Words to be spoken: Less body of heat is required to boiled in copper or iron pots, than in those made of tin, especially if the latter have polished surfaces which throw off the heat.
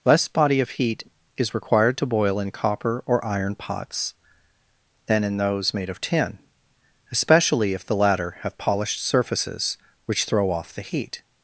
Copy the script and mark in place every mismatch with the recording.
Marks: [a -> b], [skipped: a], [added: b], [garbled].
Less body of heat is required to [boiled -> boil] in copper or iron pots, than in those made of tin, especially if the latter have polished surfaces which throw off the heat.